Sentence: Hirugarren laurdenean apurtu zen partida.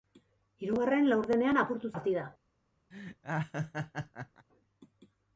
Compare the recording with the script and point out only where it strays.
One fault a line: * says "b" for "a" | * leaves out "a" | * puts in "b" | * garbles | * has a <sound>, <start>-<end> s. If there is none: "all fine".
* leaves out "zen"
* has a laugh, 2.9-4.5 s